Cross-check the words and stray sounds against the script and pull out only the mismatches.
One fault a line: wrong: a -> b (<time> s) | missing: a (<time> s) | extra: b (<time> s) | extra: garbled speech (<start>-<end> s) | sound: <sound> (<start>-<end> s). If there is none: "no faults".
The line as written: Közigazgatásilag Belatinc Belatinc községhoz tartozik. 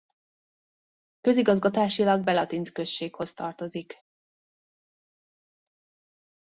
missing: Belatinc (2.7 s)